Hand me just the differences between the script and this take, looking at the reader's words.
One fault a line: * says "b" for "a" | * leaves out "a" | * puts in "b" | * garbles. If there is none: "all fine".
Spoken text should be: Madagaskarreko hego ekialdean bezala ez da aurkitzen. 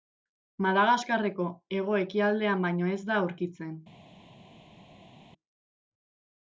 * says "baino" for "bezala"